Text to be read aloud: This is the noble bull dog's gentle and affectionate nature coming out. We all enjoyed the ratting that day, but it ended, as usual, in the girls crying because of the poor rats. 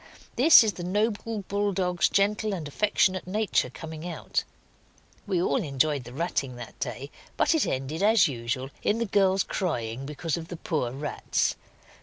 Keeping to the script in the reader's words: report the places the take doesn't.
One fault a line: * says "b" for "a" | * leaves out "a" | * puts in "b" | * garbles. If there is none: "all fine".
all fine